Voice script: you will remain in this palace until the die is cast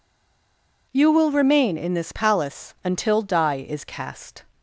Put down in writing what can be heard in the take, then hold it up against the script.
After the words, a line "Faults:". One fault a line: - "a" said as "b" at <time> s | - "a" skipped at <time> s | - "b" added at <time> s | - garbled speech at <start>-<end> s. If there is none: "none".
you will remain in this palace until die is cast
Faults:
- "the" skipped at 3.2 s